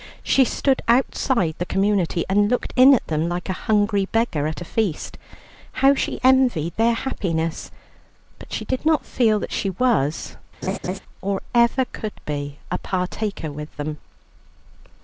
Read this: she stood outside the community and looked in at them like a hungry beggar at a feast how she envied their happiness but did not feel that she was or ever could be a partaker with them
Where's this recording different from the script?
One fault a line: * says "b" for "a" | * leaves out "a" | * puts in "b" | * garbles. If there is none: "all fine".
* puts in "she"